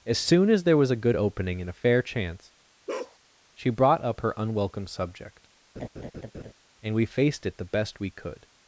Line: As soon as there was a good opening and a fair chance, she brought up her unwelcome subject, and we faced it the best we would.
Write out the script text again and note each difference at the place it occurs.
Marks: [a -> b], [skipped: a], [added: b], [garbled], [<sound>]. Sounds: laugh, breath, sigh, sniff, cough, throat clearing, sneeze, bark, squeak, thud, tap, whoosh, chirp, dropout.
As soon as there was a good opening and a fair chance, [bark] she brought up her unwelcome subject, [laugh] and we faced it the best we [would. -> could]